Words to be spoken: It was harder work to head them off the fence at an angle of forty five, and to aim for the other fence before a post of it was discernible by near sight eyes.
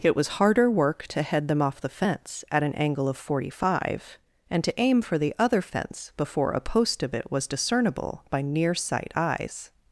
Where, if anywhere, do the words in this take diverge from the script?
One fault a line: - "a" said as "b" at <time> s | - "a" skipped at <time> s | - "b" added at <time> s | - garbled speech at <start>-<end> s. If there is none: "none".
none